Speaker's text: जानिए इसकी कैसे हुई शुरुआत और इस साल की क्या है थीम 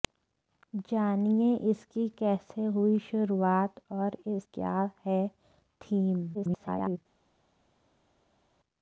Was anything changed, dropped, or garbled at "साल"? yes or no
yes